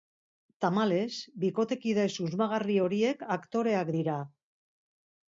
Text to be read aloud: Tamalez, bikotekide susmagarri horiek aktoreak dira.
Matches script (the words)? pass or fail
pass